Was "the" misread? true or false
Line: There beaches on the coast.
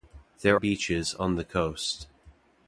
false